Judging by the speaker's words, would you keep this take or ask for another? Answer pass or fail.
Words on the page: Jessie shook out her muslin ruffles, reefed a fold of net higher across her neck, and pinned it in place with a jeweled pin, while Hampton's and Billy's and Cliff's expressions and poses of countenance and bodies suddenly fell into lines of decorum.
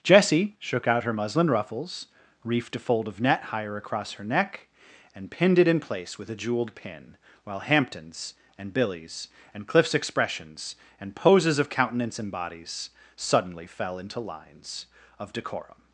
pass